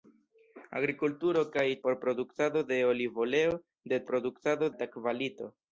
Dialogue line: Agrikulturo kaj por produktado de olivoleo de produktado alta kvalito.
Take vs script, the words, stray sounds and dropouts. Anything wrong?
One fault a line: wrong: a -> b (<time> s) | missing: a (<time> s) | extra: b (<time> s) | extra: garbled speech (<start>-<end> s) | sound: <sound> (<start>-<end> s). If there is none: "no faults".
no faults